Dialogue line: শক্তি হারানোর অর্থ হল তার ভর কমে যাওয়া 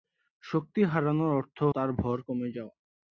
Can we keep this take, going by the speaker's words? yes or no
no